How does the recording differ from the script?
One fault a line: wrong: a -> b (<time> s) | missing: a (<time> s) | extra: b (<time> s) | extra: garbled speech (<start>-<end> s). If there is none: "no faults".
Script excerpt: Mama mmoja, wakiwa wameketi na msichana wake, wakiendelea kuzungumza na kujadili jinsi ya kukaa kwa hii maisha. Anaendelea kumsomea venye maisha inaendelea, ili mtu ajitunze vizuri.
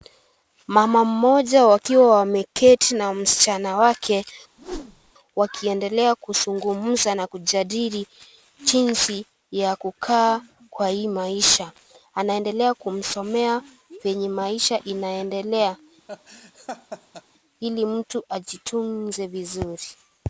no faults